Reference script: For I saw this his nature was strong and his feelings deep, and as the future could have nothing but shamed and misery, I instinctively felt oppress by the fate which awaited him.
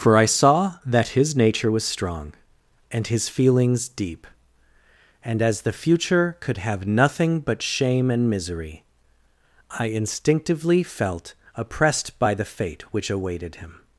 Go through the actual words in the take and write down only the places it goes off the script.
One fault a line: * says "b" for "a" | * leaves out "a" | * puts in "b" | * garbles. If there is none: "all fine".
* says "that" for "this"
* says "shame" for "shamed"
* says "oppressed" for "oppress"